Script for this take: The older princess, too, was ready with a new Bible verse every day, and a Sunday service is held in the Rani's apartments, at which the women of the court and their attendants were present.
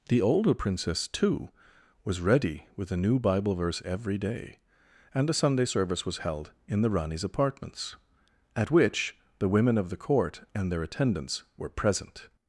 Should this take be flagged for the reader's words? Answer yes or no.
yes